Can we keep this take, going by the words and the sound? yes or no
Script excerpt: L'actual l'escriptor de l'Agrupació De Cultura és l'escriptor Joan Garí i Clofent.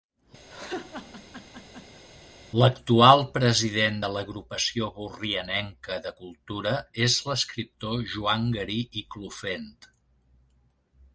no